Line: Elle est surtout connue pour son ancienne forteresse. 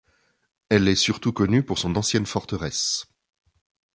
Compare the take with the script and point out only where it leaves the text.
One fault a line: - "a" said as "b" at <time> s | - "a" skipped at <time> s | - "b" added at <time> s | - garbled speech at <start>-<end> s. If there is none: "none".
none